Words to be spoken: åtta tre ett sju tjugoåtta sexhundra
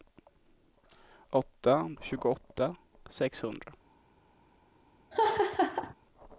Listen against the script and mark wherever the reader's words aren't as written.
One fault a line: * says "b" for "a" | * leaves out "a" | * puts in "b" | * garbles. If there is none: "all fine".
* leaves out "tre ett sju"